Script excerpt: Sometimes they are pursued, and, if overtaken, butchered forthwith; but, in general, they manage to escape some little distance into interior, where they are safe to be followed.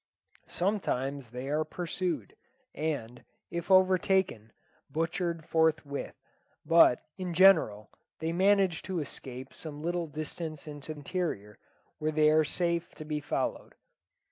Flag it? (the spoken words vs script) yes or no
no